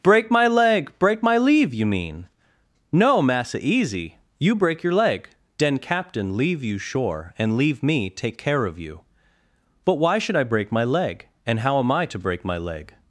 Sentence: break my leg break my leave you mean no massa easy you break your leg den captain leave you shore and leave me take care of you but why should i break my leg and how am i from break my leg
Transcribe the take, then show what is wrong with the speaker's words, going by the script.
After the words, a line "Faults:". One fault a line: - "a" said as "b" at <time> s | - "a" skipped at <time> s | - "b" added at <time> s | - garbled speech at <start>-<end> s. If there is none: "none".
break my leg break my leave you mean no massa easy you break your leg den captain leave you shore and leave me take care of you but why should i break my leg and how am i to break my leg
Faults:
- "from" said as "to" at 12.1 s